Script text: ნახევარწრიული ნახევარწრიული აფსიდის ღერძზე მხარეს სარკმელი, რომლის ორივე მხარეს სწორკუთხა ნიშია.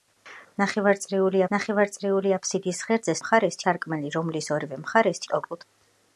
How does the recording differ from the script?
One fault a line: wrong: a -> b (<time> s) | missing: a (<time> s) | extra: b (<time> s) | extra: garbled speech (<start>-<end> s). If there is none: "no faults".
no faults